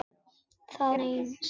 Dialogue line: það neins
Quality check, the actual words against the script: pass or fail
pass